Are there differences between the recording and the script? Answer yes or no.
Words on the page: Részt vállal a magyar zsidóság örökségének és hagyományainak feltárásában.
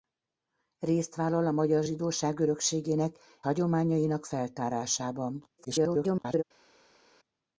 yes